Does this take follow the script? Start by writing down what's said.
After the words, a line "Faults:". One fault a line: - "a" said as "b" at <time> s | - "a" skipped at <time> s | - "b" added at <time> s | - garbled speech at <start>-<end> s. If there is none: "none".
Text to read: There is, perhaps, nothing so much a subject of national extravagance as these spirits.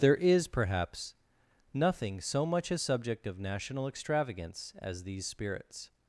There is, perhaps, nothing so much a subject of national extravagance as these spirits.
Faults:
none